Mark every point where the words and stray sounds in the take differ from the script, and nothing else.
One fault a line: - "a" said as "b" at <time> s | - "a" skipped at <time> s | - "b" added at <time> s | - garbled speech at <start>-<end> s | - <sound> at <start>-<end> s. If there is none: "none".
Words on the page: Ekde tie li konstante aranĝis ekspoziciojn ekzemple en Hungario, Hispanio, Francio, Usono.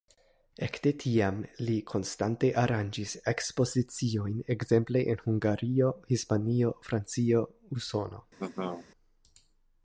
- "tie" said as "tiam" at 1.0 s
- laugh at 8.4-8.9 s